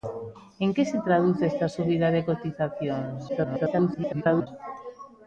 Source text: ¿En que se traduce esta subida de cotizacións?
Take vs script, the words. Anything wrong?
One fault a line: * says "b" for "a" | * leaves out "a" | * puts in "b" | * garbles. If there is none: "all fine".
* garbles